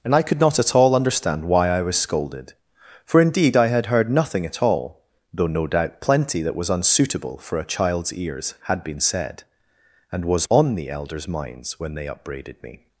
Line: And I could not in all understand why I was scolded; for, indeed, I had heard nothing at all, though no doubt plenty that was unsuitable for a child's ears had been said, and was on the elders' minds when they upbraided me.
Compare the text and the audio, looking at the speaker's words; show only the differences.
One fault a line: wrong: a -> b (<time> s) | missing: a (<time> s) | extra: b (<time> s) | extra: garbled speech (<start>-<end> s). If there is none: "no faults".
wrong: in -> at (0.6 s)